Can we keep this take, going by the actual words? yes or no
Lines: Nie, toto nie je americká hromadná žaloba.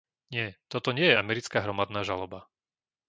yes